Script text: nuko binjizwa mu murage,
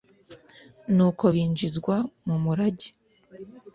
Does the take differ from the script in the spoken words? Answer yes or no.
no